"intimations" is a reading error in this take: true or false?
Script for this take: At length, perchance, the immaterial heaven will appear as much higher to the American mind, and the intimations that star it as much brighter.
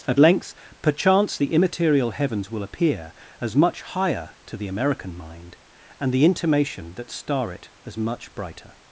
true